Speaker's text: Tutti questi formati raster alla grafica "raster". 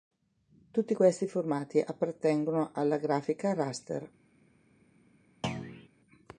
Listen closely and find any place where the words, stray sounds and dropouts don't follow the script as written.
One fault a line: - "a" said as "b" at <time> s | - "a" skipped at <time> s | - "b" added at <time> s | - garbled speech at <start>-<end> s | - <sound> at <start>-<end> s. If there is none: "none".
- "raster" said as "appartengono" at 1.8 s
- thud at 5.4-5.9 s